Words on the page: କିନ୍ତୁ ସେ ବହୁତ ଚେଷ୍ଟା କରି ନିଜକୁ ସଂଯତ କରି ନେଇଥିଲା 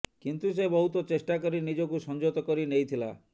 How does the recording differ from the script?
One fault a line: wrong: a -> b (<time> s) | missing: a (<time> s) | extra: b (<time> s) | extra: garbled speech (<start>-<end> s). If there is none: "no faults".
no faults